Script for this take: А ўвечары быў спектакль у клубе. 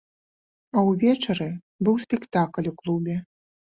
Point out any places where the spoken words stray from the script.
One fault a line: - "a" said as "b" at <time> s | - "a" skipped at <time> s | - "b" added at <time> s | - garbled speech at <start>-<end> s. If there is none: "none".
none